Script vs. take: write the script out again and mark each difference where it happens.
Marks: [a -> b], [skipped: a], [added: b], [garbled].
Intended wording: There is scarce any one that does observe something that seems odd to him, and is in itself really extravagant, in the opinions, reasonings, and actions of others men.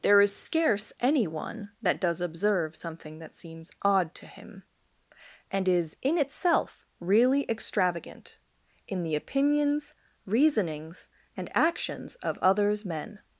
There is scarce any one that does observe something that seems odd to him, and is in itself really extravagant, in the opinions, reasonings, and actions of others men.